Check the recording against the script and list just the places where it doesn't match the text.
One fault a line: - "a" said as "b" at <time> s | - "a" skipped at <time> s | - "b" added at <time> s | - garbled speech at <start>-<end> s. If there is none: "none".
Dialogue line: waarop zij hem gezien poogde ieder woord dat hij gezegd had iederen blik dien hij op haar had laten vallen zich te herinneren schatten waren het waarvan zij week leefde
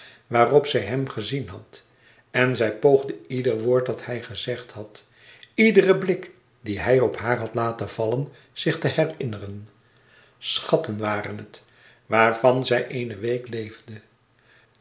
- "had en zij" added at 1.5 s
- "eene" added at 12.9 s